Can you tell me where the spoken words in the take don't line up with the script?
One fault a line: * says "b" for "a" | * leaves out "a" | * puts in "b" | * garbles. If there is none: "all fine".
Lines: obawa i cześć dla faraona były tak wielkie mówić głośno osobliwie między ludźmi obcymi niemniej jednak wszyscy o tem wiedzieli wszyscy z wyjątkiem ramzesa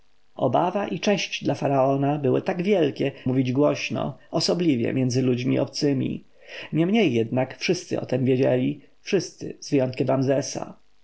all fine